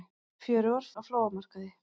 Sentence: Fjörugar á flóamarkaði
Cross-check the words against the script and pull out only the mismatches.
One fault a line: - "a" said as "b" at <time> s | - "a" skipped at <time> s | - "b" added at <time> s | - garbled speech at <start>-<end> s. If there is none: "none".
none